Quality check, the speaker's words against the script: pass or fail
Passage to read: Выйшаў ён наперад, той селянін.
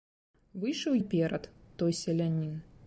fail